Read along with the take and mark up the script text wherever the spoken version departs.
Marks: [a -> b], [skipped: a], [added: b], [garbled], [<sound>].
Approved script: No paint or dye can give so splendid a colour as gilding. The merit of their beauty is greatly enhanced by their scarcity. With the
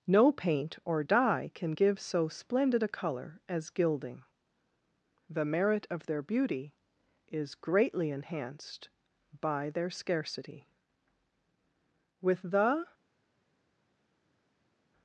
No paint or dye can give so splendid a colour as gilding. The merit of their beauty is greatly enhanced by their scarcity. With the